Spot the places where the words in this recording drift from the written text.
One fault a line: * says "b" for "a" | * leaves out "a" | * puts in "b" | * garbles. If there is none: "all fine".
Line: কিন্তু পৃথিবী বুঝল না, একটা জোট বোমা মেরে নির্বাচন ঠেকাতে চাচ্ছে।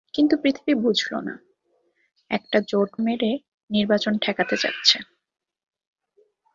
* leaves out "বোমা"